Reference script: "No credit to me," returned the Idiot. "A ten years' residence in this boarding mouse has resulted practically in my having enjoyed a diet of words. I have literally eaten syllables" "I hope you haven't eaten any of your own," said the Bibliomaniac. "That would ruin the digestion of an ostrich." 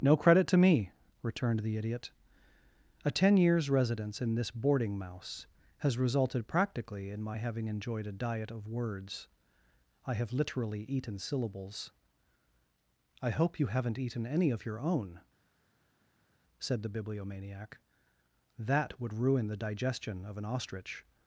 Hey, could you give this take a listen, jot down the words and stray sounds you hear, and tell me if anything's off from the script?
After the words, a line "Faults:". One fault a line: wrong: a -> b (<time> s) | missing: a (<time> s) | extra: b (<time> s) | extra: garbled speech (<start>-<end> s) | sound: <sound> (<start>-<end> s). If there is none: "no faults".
"No credit to me," returned the Idiot. "A ten years' residence in this boarding mouse has resulted practically in my having enjoyed a diet of words. I have literally eaten syllables" "I hope you haven't eaten any of your own," said the Bibliomaniac. "That would ruin the digestion of an ostrich."
Faults:
no faults